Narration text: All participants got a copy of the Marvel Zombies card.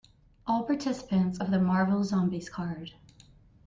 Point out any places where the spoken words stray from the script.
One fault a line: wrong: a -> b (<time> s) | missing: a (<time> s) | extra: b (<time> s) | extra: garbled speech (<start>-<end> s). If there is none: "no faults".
missing: got a copy (1.4 s)